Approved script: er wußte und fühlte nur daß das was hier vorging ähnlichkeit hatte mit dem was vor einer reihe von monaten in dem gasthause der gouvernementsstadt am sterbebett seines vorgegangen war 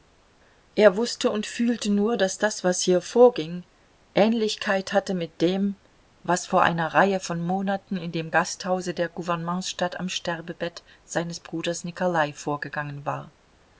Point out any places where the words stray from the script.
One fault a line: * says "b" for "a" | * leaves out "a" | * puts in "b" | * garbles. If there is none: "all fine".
* puts in "bruders nikolai"